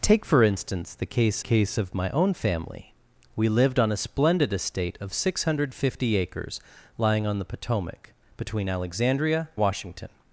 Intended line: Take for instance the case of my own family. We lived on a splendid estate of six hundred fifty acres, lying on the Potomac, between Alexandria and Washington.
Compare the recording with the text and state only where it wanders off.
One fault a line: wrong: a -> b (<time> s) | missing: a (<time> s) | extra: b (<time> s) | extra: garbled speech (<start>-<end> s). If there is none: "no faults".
extra: case (1.4 s)
missing: and (9.5 s)